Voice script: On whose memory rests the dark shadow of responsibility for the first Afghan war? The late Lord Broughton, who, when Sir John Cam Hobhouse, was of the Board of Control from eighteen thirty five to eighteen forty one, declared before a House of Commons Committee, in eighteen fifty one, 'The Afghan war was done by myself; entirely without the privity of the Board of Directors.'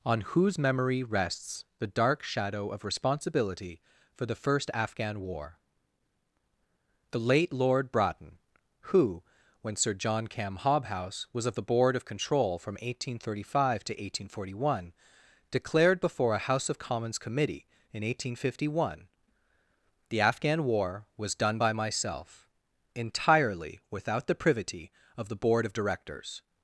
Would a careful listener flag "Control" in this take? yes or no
no